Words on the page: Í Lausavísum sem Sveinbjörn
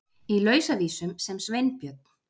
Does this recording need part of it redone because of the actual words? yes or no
no